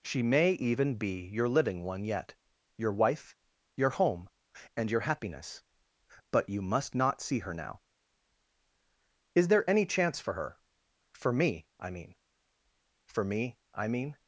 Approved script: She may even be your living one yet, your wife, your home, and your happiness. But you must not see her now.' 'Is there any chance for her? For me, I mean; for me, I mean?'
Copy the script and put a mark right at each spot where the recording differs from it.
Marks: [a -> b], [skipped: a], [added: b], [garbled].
She may even be your living one yet, your wife, your home, and your happiness. But you must not see her now.' 'Is there any chance for her? For me, I mean; for me, I mean?'